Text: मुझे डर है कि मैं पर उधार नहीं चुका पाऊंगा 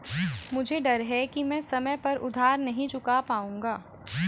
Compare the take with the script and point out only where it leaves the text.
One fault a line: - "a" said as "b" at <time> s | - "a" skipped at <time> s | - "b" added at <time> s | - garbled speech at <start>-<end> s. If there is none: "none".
- "समय" added at 1.6 s